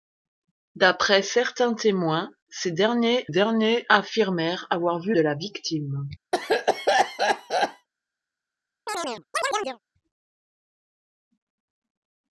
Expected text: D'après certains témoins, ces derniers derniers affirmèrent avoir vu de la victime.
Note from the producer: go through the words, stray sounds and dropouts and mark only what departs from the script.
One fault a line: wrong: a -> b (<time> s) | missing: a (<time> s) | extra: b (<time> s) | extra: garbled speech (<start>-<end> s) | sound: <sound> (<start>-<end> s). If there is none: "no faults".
sound: cough (6.3-7.9 s)
sound: chirp (8.9-9.8 s)